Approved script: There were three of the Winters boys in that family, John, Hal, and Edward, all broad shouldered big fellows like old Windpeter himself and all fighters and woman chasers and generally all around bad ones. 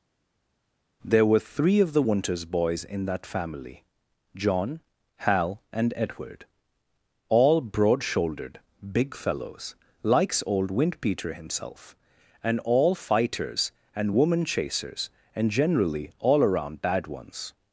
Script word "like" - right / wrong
wrong